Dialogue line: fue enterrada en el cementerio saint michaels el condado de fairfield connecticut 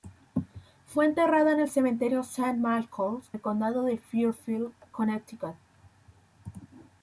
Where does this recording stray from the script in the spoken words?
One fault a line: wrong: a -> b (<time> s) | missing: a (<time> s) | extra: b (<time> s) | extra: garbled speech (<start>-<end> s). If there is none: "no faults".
no faults